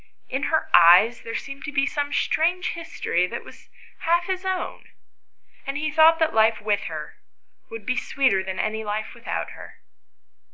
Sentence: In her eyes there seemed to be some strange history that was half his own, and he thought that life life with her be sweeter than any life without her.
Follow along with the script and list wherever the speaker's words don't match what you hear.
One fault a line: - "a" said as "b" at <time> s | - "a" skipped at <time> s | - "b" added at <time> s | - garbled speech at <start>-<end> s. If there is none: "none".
- "life" skipped at 6.6 s
- "would" added at 7.7 s